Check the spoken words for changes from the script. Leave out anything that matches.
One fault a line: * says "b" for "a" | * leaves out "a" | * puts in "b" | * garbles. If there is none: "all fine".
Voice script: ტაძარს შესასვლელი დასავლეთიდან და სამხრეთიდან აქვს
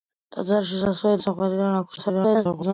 * leaves out "დასავლეთიდან"
* garbles